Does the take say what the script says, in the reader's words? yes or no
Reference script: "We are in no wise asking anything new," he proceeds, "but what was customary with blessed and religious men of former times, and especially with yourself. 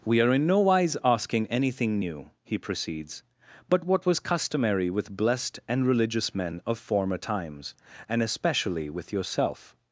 yes